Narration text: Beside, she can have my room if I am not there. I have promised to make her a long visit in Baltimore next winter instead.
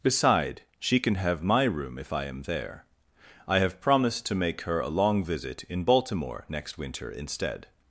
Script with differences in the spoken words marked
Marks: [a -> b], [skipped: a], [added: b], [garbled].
Beside, she can have my room if I am [skipped: not] there. I have promised to make her a long visit in Baltimore next winter instead.